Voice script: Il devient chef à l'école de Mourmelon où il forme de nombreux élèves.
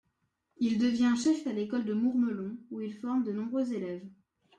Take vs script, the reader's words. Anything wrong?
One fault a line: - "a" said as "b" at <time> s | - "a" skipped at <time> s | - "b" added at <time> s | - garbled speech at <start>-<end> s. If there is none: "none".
none